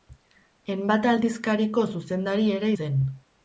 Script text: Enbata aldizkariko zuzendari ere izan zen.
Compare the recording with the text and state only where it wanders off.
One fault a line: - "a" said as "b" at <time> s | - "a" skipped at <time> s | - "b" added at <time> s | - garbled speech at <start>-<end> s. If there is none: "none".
- "izan" skipped at 2.7 s